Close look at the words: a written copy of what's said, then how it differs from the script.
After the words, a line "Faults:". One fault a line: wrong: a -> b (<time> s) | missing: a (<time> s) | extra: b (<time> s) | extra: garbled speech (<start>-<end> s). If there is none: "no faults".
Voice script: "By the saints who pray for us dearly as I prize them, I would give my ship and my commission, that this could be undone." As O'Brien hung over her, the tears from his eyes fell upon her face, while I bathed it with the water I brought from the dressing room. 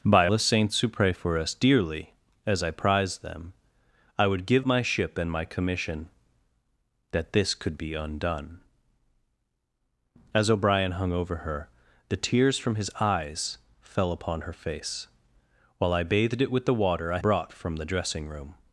"By the saints who pray for us dearly as I prize them, I would give my ship and my commission, that this could be undone." As O'Brien hung over her, the tears from his eyes fell upon her face, while I bathed it with the water I brought from the dressing room.
Faults:
no faults